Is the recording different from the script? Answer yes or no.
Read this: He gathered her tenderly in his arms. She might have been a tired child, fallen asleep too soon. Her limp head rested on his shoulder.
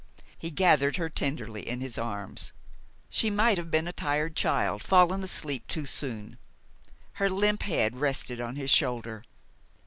no